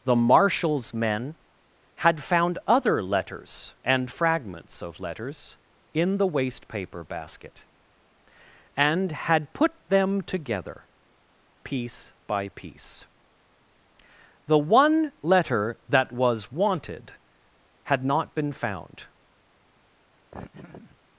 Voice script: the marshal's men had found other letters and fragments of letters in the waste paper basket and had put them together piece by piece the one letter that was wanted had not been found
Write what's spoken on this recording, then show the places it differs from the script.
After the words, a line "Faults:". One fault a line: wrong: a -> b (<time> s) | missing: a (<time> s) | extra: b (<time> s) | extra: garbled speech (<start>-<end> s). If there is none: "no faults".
the marshal's men had found other letters and fragments of letters in the waste paper basket and had put them together piece by piece the one letter that was wanted had not been found
Faults:
no faults